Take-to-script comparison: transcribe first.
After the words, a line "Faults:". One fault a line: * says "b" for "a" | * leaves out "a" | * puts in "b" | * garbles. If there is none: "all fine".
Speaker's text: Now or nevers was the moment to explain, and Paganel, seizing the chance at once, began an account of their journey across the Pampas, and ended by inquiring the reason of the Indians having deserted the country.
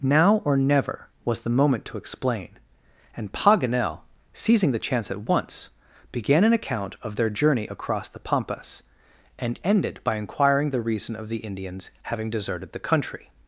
Now or never was the moment to explain, and Paganel, seizing the chance at once, began an account of their journey across the Pampas, and ended by inquiring the reason of the Indians having deserted the country.
Faults:
* says "never" for "nevers"